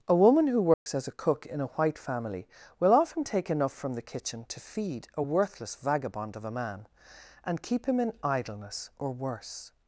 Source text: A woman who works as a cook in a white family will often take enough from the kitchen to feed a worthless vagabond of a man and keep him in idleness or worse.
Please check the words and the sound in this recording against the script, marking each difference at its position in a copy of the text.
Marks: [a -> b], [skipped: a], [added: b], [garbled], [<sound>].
A woman who works [dropout] as a cook in a white family will often take enough from the kitchen to feed a worthless vagabond of a man and keep him in idleness or worse.